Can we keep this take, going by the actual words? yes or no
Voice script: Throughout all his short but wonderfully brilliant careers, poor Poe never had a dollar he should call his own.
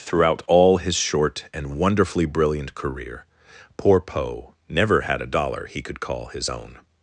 no